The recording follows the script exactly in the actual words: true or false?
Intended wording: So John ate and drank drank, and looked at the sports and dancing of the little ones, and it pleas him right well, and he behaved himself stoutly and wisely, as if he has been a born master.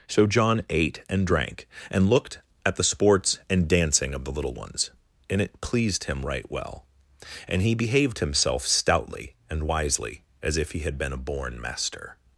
false